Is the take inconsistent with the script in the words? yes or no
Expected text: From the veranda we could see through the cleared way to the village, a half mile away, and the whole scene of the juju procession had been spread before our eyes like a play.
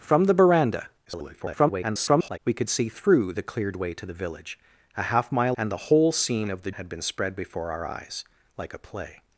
yes